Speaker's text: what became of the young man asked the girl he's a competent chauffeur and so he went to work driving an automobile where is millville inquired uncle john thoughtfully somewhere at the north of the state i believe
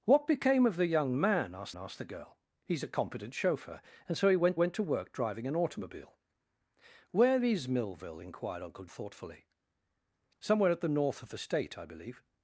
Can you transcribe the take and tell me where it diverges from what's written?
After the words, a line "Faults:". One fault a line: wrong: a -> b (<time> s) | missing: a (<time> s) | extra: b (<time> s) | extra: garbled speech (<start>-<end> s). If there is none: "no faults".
what became of the young man asked asked the girl he's a competent chauffeur and so he went went to work driving an automobile where is millville inquired uncle thoughtfully somewhere at the north of the state i believe
Faults:
extra: asked (1.8 s)
extra: went (4.5 s)
missing: john (8.9 s)